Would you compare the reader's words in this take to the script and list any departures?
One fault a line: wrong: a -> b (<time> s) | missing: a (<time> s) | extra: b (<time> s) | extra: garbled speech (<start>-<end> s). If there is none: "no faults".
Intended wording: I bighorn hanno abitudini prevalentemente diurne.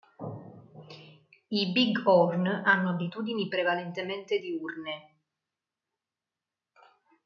no faults